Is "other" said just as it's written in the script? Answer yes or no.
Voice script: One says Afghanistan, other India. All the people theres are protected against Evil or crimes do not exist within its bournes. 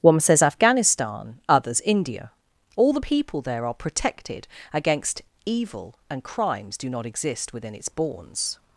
no